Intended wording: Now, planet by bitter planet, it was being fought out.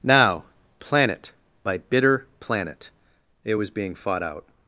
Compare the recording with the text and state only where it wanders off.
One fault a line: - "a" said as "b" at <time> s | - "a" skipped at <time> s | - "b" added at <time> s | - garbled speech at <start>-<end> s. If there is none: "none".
none